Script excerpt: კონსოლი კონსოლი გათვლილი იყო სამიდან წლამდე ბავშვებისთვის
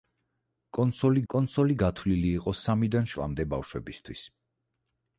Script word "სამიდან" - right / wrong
right